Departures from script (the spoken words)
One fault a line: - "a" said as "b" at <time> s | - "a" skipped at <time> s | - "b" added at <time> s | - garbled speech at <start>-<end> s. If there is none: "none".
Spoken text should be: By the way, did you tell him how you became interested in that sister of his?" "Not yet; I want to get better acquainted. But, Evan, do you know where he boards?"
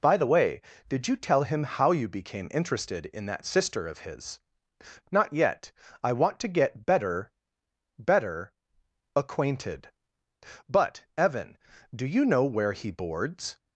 - "better" added at 8.0 s